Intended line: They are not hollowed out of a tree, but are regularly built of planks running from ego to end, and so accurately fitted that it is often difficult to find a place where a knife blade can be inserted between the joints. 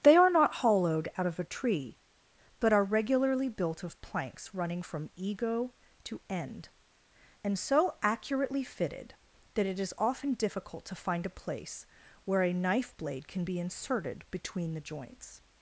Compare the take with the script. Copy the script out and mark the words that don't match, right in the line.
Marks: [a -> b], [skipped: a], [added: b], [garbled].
They are not hollowed out of a tree, but are regularly built of planks running from ego to end, and so accurately fitted that it is often difficult to find a place where a knife blade can be inserted between the joints.